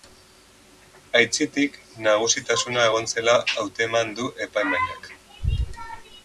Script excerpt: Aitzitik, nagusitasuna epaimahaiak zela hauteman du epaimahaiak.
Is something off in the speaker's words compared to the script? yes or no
yes